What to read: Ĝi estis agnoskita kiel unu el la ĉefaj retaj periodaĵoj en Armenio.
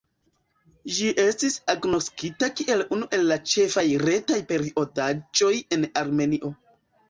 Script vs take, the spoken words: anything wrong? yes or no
no